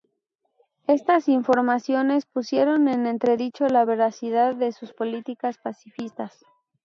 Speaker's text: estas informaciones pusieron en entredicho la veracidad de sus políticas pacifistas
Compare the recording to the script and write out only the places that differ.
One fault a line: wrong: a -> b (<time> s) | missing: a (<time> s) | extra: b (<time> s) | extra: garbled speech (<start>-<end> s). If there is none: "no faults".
no faults